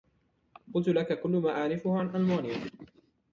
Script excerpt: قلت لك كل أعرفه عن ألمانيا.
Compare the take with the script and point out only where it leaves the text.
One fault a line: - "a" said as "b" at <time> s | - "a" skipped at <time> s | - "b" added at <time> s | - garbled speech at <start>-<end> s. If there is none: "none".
- "ما" added at 1.3 s